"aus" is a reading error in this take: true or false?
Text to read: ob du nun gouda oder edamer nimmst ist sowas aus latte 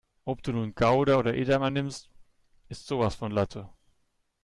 true